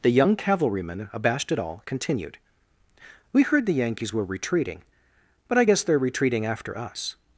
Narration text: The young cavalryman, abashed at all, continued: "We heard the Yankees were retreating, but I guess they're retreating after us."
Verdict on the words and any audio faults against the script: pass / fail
pass